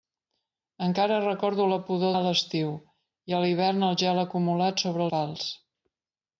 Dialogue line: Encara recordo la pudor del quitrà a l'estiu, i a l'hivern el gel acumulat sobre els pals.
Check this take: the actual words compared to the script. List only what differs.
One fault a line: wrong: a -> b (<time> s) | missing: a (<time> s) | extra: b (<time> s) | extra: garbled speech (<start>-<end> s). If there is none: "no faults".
missing: del quitrà (2.1 s)
missing: els (5.1 s)